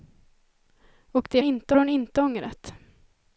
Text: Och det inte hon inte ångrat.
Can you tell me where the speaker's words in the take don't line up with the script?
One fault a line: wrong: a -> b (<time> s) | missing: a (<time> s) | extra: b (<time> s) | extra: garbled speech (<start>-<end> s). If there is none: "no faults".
no faults